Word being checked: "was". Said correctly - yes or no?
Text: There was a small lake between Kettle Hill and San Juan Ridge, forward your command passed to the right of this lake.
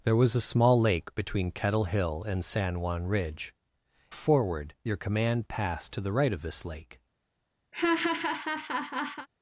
yes